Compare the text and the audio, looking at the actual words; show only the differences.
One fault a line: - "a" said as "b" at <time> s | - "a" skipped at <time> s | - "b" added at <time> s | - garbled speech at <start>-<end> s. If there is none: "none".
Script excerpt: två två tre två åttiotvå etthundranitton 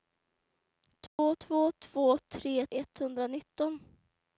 - "tre" skipped at 1.7 s
- "åttiotvå" said as "tre" at 2.2 s